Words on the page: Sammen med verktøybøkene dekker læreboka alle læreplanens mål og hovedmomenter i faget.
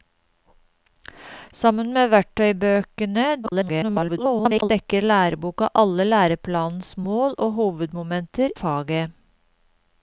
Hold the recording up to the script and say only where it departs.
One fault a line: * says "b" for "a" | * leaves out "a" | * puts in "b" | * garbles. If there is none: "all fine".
* garbles
* leaves out "i"